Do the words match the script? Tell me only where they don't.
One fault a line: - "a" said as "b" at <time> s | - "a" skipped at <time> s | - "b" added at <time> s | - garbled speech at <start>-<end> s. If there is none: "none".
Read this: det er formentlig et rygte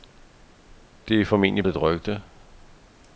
none